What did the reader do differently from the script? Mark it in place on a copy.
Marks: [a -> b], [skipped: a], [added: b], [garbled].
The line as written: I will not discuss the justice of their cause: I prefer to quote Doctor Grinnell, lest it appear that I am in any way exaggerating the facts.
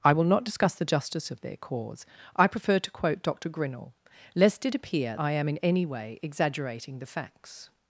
I will not discuss the justice of their cause: I prefer to quote Doctor Grinnell, lest it appear [skipped: that] I am in any way exaggerating the facts.